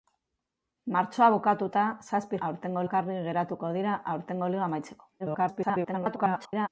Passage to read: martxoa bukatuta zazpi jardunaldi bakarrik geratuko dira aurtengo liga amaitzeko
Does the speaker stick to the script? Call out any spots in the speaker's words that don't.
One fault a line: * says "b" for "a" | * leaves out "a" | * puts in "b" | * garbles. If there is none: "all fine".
* says "aurtengo" for "jardunaldi"
* garbles